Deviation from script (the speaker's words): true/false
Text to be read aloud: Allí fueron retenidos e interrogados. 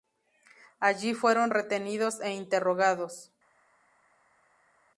false